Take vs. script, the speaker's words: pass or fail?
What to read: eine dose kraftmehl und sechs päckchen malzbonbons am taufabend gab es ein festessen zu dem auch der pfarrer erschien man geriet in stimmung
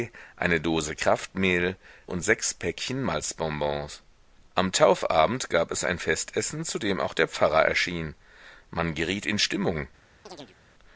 pass